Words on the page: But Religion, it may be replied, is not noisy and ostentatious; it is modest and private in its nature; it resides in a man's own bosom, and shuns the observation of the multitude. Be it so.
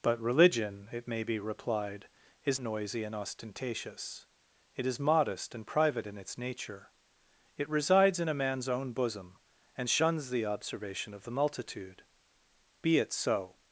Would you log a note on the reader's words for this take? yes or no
yes